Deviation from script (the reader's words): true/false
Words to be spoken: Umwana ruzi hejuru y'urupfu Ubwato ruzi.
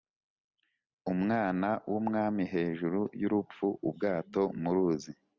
true